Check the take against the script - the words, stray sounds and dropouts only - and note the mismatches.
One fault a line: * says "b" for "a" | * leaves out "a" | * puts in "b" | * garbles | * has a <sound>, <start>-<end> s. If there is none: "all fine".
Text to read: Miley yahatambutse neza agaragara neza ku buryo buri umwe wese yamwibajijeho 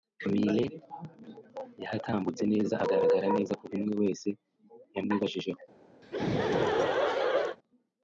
* leaves out "buryo buri"
* has a laugh, 6.0-7.6 s